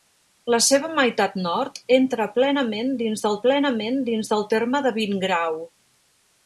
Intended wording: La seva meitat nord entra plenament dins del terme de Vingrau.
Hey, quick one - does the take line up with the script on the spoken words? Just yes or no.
no